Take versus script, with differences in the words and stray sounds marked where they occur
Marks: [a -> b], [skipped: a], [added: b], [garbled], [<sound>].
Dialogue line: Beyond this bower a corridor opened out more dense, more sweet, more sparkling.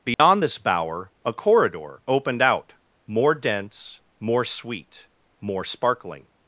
Beyond [dropout] this bower a corridor opened out more dense, more sweet, more sparkling.